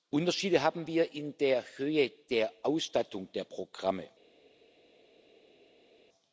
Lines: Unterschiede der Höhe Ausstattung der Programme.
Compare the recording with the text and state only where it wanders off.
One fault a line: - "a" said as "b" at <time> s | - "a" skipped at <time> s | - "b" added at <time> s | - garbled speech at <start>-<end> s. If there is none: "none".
- "haben wir in" added at 0.6 s
- "der" added at 2.3 s